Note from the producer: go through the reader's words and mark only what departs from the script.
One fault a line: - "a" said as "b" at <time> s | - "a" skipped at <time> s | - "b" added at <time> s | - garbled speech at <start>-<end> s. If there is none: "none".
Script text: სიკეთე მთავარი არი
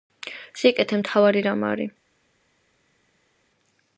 - "რამ" added at 1.5 s